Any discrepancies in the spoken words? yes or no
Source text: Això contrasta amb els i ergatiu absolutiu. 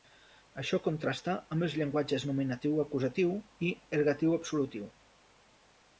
yes